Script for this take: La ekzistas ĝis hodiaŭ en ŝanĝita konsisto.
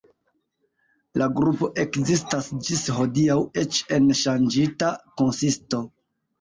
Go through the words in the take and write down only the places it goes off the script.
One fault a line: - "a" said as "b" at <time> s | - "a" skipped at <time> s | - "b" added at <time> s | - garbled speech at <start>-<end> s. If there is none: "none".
- "grupo" added at 1.4 s
- "eĉ" added at 3.6 s